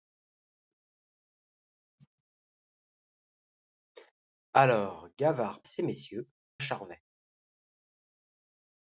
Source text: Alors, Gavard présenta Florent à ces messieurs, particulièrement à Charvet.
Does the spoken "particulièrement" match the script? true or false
false